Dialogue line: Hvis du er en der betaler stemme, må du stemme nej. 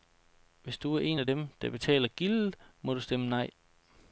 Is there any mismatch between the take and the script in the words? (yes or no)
yes